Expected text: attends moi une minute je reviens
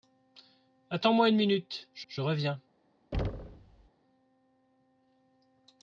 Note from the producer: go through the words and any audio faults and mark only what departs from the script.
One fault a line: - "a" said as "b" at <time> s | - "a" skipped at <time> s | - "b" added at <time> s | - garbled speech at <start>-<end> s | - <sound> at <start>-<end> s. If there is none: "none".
- "je" added at 2.1 s
- thud at 3.1-3.9 s